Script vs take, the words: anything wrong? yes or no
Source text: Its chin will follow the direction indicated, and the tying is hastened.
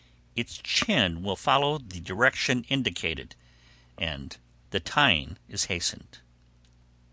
no